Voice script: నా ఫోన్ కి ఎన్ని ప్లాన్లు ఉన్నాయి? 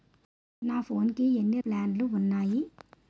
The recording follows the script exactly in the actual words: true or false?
true